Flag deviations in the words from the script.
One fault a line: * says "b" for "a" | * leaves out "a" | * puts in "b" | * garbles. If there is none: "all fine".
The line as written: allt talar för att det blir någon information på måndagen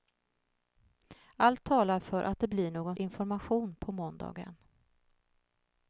all fine